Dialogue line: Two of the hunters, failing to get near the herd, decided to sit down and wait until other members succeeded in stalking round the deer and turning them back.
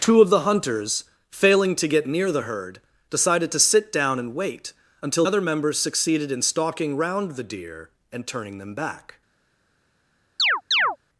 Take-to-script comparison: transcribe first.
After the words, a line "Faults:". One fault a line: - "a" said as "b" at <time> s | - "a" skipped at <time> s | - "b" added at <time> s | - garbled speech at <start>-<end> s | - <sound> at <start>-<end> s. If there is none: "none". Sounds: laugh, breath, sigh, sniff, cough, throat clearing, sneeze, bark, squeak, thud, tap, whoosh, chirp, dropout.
Two of the hunters, failing to get near the herd, decided to sit down and wait until other members succeeded in stalking round the deer and turning them back.
Faults:
- chirp at 10.4-11.0 s